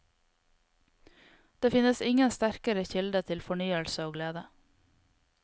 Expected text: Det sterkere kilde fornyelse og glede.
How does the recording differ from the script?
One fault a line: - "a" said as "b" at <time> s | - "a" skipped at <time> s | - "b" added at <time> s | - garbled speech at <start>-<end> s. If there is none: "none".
- "finnes ingen" added at 1.7 s
- "til" added at 3.3 s